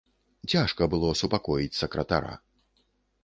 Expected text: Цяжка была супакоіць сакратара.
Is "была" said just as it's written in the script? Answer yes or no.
no